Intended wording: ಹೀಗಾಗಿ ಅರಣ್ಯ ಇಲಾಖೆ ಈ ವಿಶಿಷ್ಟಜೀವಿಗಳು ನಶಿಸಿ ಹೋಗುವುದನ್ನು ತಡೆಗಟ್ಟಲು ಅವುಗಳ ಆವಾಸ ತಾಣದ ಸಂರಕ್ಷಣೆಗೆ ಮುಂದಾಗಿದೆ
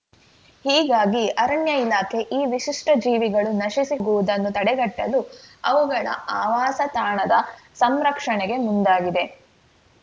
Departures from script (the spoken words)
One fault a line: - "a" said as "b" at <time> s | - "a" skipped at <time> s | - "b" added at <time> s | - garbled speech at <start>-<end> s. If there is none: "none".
none